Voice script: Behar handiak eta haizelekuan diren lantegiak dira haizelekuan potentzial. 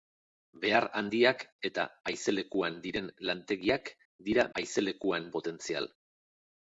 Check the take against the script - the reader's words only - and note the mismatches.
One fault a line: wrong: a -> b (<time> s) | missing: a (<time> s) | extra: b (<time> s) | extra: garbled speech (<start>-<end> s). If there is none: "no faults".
no faults